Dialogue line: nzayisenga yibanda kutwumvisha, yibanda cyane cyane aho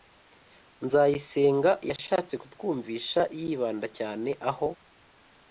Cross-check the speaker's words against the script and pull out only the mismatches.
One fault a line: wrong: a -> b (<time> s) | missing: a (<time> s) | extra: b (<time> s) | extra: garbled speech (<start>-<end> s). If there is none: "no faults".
wrong: yibanda -> yashatse (1.9 s)
missing: cyane (4.3 s)